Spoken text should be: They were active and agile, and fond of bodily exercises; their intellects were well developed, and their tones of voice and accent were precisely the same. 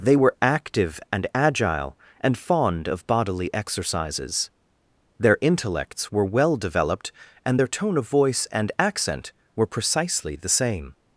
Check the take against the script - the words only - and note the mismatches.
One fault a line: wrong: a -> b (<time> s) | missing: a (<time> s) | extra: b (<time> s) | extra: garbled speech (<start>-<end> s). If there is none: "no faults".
wrong: tones -> tone (7.7 s)